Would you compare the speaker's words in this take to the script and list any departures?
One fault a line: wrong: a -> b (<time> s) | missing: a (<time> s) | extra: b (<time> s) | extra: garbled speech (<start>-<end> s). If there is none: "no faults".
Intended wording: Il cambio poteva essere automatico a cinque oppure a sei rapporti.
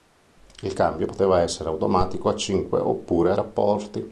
missing: sei (3.4 s)